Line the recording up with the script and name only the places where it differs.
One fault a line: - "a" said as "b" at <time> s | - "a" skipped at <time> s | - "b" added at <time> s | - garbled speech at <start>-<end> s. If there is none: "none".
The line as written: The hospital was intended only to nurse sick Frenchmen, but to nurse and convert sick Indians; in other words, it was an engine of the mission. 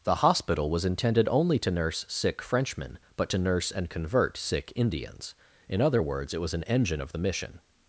none